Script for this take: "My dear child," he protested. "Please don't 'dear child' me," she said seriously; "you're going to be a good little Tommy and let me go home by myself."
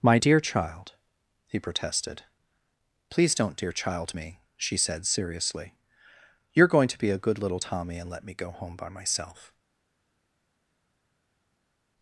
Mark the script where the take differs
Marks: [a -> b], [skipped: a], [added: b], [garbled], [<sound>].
"My dear child," he protested. "Please don't 'dear child' me," she said seriously; "you're going to be a good little Tommy and let me go home by myself."